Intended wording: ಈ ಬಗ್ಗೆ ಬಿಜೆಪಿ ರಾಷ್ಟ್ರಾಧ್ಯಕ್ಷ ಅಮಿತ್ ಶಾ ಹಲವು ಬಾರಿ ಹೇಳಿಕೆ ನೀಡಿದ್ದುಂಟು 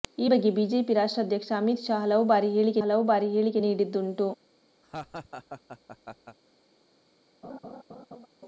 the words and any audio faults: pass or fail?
fail